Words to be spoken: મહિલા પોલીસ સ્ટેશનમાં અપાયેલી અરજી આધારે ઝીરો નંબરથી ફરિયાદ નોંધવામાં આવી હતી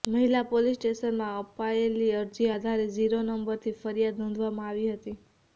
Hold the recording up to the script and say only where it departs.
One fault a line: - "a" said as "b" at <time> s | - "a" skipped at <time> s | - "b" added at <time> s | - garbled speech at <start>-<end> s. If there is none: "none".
none